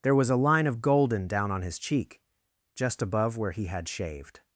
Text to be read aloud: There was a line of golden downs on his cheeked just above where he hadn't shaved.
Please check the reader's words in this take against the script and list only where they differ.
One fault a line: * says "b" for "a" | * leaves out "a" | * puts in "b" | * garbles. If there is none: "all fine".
* says "down" for "downs"
* says "cheek" for "cheeked"
* says "had" for "hadn't"